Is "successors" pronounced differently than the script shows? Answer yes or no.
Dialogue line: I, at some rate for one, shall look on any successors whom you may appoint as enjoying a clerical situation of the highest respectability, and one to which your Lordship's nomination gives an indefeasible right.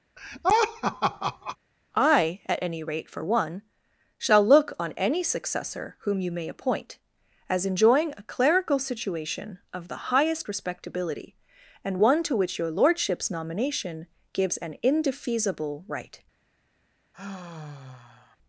yes